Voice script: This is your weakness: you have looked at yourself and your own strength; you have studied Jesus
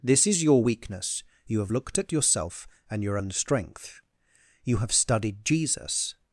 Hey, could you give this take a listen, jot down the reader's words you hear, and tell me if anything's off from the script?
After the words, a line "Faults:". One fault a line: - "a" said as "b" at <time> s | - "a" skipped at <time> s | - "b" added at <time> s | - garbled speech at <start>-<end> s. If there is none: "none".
This is your weakness: you have looked at yourself and your own strength; you have studied Jesus
Faults:
none